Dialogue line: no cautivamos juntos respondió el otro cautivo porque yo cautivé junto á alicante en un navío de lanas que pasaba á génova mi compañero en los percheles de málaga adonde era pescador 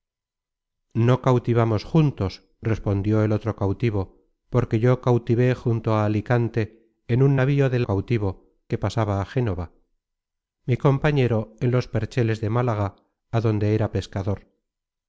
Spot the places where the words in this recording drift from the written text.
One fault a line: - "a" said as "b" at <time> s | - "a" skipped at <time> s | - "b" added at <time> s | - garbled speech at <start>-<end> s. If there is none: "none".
- "lanas" said as "cautivo" at 7.8 s